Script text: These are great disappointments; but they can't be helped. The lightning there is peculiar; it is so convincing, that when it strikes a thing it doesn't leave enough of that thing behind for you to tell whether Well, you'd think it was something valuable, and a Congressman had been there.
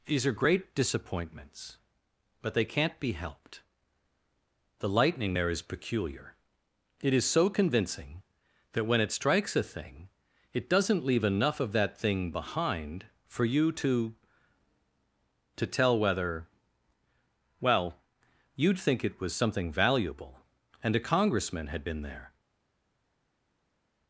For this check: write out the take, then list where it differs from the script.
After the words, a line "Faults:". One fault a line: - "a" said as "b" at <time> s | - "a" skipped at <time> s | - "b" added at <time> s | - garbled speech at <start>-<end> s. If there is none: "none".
These are great disappointments; but they can't be helped. The lightning there is peculiar; it is so convincing, that when it strikes a thing it doesn't leave enough of that thing behind for you to to tell whether Well, you'd think it was something valuable, and a Congressman had been there.
Faults:
- "to" added at 15.6 s